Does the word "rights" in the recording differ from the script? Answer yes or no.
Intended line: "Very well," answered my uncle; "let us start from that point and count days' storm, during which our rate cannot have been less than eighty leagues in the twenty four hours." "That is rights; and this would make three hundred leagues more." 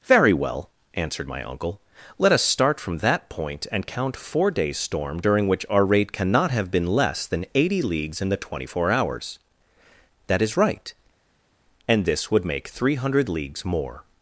yes